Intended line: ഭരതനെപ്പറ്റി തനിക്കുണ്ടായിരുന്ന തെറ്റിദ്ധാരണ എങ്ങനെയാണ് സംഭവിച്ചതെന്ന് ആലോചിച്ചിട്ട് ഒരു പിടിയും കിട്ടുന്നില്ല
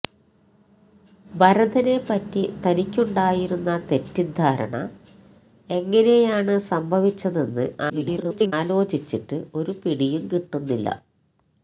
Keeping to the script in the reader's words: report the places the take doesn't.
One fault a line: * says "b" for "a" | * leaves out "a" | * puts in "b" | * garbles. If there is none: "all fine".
* garbles